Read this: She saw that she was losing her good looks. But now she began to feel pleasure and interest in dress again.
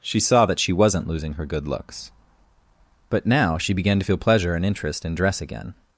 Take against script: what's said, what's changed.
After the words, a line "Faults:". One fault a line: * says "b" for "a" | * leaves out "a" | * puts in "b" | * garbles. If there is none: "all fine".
She saw that she wasn't losing her good looks. But now she began to feel pleasure and interest in dress again.
Faults:
* says "wasn't" for "was"